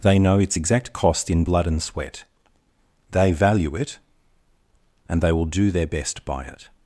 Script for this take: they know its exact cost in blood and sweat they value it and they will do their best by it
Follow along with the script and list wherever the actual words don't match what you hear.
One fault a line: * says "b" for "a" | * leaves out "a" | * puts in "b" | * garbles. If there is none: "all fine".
all fine